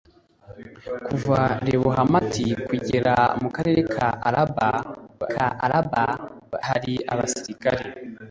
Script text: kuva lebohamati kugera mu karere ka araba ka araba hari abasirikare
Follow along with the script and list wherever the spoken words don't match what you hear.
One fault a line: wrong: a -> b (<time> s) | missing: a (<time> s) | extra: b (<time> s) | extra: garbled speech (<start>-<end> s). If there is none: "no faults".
no faults